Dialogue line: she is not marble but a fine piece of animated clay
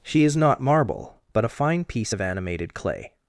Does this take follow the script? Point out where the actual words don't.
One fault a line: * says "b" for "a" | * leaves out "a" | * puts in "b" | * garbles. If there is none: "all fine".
all fine